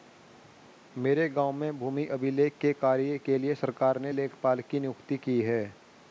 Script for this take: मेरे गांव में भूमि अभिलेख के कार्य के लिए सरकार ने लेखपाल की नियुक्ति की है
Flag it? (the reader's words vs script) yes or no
no